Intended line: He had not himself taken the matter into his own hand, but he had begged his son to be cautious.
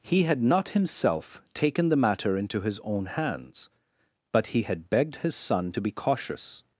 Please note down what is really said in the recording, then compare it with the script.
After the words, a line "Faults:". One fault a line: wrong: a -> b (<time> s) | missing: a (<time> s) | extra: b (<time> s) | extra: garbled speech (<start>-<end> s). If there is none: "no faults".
He had not himself taken the matter into his own hands, but he had begged his son to be cautious.
Faults:
wrong: hand -> hands (3.1 s)